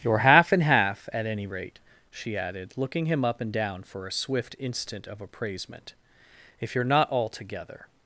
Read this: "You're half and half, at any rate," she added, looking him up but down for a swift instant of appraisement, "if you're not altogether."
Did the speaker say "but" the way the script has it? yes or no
no